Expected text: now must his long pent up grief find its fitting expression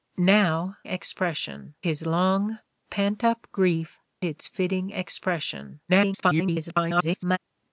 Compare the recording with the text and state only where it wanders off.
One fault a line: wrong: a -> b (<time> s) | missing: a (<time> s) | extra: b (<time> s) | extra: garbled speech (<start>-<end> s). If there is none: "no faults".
wrong: must -> expression (0.8 s)
missing: find (4.0 s)
extra: garbled speech (5.9-7.4 s)